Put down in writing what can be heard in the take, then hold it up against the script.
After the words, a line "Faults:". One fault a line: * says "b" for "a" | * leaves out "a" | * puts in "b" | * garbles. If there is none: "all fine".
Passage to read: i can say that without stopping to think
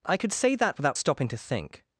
i could say that without stopping to think
Faults:
* says "could" for "can"